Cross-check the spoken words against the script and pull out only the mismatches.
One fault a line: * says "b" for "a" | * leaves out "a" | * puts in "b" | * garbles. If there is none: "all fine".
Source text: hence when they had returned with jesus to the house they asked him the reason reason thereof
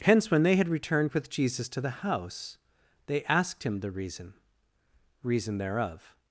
all fine